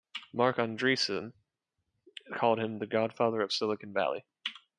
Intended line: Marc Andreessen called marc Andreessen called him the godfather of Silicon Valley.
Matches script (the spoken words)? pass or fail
fail